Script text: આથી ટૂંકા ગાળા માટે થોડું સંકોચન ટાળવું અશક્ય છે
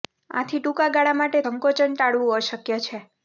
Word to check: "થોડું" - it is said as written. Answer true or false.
false